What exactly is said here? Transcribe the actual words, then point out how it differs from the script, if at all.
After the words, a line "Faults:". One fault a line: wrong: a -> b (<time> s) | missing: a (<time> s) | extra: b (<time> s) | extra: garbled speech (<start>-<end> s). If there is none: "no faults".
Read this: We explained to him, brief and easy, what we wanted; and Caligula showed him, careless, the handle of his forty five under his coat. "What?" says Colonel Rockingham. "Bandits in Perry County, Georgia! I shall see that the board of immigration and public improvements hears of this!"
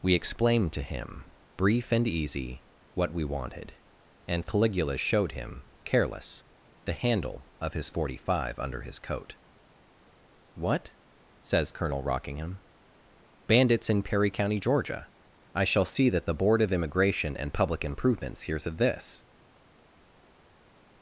We explained to him, brief and easy, what we wanted; and Caligula showed him, careless, the handle of his forty five under his coat. "What?" says Colonel Rockingham. "Bandits in Perry County, Georgia! I shall see that the board of immigration and public improvements hears of this!"
Faults:
no faults